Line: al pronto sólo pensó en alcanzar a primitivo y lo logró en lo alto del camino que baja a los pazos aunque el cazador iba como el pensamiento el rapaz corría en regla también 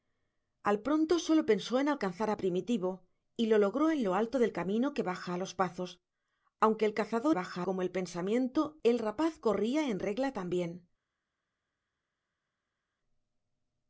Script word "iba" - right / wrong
wrong